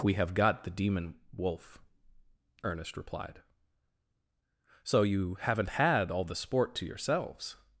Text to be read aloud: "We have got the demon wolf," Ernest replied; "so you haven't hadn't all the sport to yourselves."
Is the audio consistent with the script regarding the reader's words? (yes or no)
no